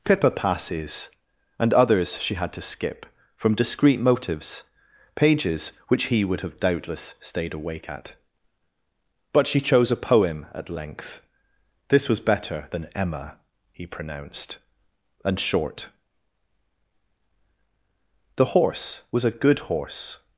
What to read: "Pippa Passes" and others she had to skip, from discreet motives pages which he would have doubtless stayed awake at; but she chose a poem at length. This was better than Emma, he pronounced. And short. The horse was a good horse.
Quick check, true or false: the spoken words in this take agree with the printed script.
true